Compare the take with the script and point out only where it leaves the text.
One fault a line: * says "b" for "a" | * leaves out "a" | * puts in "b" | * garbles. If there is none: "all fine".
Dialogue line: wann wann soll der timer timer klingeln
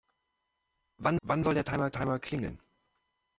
all fine